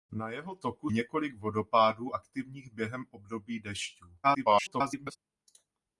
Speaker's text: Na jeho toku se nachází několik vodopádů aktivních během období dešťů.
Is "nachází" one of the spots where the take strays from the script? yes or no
yes